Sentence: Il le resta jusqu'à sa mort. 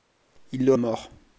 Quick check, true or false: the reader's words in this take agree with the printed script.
false